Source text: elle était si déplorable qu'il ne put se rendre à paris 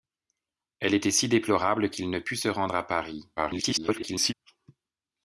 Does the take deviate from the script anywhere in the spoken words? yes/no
yes